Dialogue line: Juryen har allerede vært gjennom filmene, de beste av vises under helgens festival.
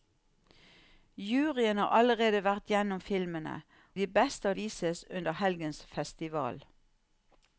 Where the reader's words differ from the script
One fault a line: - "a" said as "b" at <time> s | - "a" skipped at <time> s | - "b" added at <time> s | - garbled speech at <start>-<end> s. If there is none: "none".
none